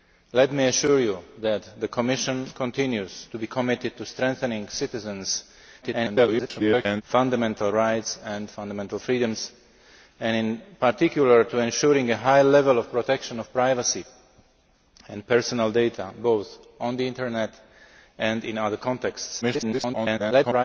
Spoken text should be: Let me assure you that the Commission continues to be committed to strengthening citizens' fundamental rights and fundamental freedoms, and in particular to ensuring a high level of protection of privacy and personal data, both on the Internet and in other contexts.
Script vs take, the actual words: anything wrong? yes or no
yes